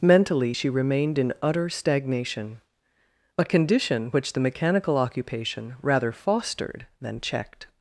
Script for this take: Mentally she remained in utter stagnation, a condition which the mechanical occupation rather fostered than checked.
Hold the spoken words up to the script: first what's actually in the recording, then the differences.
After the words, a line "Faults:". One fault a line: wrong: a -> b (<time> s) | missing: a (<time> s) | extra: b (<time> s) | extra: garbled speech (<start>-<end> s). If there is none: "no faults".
Mentally she remained in utter stagnation, a condition which the mechanical occupation rather fostered than checked.
Faults:
no faults